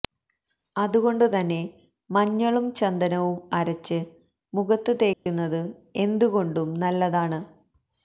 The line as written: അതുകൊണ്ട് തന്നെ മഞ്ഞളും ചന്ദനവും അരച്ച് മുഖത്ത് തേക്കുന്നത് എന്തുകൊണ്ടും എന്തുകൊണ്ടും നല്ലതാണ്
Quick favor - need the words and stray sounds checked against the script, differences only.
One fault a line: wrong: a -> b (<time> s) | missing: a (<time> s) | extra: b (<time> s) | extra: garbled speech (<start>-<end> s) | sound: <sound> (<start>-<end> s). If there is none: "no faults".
sound: dropout (5.1-5.3 s)
missing: എന്തുകൊണ്ടും (6.7 s)